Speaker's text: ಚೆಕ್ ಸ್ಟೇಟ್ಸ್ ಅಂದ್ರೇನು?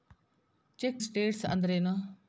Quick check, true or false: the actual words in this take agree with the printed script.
true